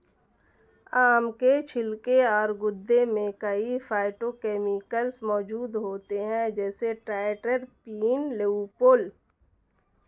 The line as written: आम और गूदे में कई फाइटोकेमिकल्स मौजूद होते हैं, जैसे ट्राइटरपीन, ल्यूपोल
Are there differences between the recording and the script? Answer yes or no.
yes